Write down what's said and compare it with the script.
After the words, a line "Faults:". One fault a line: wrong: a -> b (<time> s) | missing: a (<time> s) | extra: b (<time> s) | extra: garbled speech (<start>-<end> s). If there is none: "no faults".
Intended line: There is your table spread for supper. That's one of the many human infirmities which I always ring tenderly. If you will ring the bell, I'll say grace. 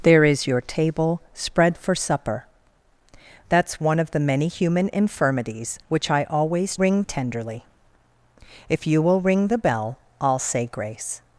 There is your table spread for supper. That's one of the many human infirmities which I always ring tenderly. If you will ring the bell, I'll say grace.
Faults:
no faults